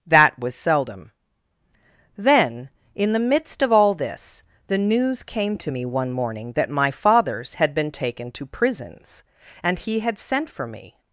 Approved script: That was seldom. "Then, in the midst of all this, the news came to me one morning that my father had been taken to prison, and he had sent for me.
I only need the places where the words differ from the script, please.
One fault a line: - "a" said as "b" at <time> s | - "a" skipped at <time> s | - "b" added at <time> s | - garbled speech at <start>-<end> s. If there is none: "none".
- "father" said as "fathers" at 6.9 s
- "prison" said as "prisons" at 8.4 s